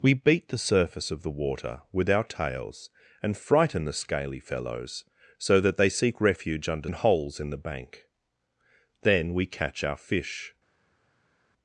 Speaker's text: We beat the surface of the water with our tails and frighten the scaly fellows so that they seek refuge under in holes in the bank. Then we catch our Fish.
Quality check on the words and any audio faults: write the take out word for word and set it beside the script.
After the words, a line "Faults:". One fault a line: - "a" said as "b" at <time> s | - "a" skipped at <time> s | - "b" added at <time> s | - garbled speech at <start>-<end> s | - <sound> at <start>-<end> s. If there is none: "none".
We beat the surface of the water with our tails and frighten the scaly fellows so that they seek refuge under in holes in the bank. Then we catch our Fish.
Faults:
none